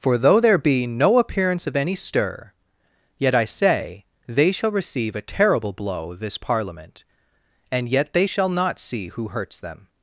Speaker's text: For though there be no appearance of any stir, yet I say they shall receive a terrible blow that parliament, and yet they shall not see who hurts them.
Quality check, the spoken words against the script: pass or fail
fail